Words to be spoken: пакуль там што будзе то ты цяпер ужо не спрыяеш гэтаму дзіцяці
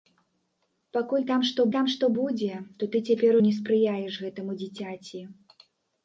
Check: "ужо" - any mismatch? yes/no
yes